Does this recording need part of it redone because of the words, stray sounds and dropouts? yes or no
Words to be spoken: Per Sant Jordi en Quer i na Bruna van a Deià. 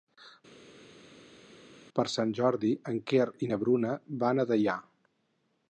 no